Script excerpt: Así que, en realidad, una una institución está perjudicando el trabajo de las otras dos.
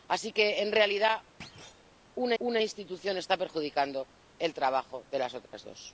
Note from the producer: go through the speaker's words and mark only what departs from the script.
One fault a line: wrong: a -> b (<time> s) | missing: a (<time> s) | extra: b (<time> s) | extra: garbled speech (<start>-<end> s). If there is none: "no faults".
no faults